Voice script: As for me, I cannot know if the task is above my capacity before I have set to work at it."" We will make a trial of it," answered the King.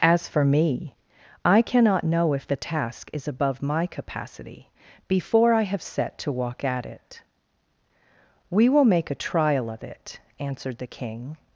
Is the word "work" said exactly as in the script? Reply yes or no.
no